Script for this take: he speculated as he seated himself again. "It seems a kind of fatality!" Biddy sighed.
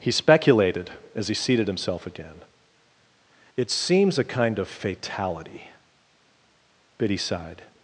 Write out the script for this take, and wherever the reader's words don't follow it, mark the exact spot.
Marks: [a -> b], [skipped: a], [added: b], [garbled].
he speculated as he seated himself again. "It seems a kind of fatality!" Biddy sighed.